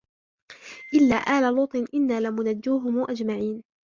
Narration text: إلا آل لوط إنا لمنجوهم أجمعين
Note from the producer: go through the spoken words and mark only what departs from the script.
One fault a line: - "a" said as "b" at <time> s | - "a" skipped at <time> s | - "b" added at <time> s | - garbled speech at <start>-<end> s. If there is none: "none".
none